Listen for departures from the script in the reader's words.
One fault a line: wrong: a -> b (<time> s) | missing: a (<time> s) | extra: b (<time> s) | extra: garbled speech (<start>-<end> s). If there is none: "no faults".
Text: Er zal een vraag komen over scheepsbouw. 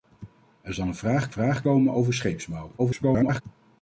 extra: vraag (1.3 s)
extra: garbled speech (2.8-3.4 s)